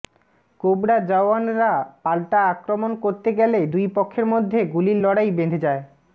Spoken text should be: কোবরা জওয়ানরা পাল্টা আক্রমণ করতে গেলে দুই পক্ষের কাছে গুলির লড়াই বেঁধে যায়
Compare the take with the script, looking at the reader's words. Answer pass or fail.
fail